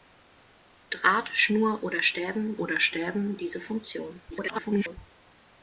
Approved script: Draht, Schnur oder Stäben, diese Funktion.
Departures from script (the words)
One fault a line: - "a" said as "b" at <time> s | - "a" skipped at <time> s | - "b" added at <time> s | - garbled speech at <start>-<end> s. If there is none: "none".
- "oder Stäben" added at 2.6 s
- garbled speech at 4.3-5.0 s